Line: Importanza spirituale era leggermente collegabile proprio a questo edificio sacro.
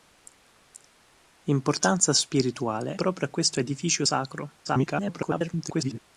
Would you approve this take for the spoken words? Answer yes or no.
no